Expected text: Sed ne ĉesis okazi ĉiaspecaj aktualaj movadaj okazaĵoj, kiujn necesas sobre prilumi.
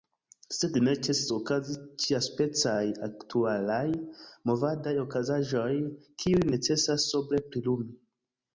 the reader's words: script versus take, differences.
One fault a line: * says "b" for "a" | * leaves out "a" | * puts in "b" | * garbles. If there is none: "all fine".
all fine